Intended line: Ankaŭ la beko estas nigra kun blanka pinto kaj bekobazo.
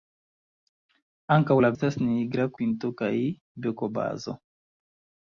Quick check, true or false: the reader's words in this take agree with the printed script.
false